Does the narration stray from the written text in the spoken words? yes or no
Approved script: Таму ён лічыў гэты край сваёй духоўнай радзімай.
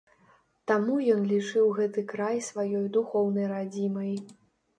no